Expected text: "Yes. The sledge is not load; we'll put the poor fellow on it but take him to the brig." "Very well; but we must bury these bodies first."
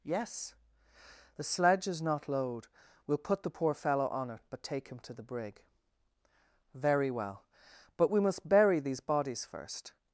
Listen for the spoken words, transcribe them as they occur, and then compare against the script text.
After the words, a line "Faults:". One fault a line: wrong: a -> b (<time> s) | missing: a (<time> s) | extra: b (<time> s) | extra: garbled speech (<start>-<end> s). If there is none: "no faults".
"Yes. The sledge is not load; we'll put the poor fellow on it but take him to the brig." "Very well; but we must bury these bodies first."
Faults:
no faults